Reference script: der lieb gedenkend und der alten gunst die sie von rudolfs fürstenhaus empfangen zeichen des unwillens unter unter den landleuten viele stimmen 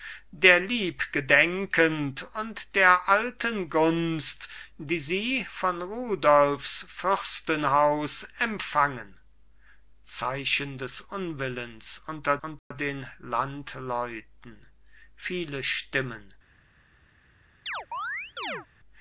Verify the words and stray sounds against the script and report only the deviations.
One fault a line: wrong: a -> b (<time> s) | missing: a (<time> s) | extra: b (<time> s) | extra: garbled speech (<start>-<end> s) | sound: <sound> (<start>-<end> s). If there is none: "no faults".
sound: dropout (12.6-12.7 s)
sound: chirp (17.7-18.7 s)